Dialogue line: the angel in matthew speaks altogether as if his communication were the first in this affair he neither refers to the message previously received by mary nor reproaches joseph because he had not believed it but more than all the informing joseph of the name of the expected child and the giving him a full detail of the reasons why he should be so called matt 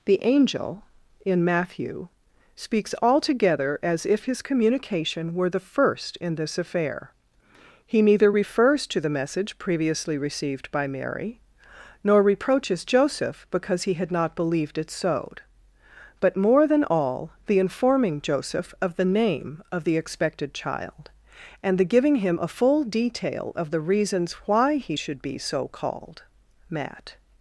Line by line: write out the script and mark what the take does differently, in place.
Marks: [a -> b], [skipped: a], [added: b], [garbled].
the angel in matthew speaks altogether as if his communication were the first in this affair he neither refers to the message previously received by mary nor reproaches joseph because he had not believed it [added: sowed] but more than all the informing joseph of the name of the expected child and the giving him a full detail of the reasons why he should be so called matt